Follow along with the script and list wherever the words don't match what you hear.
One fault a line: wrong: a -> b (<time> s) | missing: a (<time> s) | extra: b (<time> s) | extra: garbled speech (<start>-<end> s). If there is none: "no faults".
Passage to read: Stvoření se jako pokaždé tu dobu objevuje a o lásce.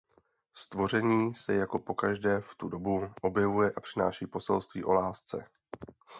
extra: v (2.4 s)
extra: přináší poselství (3.8 s)